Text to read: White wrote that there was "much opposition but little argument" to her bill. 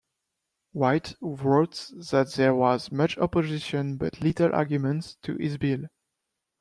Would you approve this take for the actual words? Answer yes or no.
no